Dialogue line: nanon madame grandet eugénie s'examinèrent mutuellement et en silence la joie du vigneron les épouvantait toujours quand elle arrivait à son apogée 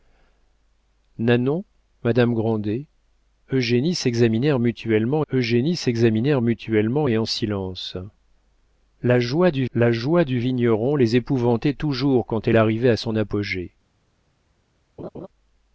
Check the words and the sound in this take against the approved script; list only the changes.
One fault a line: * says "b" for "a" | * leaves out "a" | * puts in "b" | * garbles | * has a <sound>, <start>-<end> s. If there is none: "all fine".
* puts in "eugénie s'examinèrent mutuellement"
* puts in "la joie du"
* has a laugh, 15.0-15.3 s